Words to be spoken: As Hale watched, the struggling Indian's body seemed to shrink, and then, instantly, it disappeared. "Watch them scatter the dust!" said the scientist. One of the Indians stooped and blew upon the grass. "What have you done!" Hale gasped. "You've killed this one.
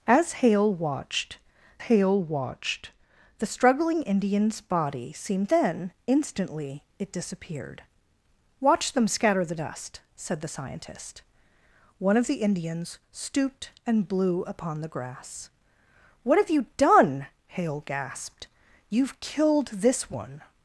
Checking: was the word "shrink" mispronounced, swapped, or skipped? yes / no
yes